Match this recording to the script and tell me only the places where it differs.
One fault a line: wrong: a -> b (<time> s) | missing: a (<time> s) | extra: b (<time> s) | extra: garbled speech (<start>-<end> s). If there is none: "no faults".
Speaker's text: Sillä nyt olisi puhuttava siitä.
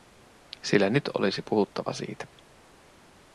no faults